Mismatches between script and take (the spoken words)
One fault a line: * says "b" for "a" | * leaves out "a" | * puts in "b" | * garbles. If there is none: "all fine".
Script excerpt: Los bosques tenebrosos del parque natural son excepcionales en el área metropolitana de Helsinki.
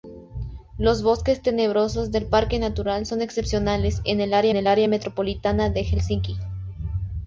* puts in "el área"